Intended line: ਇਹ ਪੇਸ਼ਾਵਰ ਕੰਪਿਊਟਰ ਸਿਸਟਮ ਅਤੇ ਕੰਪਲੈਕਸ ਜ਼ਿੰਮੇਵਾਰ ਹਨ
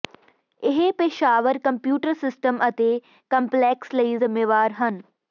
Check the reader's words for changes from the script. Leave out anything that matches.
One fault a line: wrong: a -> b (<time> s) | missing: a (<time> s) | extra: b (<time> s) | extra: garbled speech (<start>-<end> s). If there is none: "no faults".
extra: ਲਈ (3.9 s)